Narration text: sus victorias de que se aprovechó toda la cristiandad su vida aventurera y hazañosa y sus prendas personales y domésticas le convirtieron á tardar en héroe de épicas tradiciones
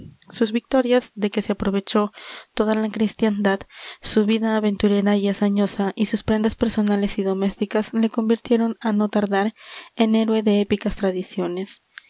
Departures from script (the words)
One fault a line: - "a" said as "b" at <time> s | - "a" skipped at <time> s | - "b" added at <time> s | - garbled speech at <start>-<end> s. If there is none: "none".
- "no" added at 8.9 s